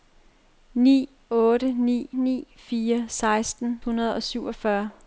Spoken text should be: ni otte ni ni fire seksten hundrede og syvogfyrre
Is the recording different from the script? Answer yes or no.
no